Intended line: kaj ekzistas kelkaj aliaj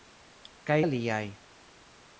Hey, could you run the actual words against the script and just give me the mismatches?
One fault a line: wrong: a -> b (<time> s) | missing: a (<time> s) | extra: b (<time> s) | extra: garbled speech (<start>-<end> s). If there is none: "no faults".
missing: ekzistas kelkaj (0.8 s)